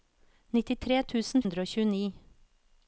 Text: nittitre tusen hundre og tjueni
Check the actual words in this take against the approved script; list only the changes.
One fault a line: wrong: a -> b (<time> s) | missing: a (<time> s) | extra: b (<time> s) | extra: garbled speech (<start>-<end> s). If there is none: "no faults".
no faults